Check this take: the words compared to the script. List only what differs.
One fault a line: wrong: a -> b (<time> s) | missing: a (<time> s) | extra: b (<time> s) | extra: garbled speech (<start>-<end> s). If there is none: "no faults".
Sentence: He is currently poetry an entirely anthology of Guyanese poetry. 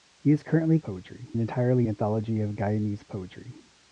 no faults